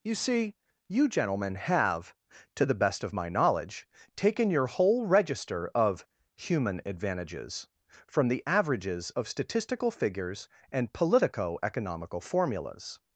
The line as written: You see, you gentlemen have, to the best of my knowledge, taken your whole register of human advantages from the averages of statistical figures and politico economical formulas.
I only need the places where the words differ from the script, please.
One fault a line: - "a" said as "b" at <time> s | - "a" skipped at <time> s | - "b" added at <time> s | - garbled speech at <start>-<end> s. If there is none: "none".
none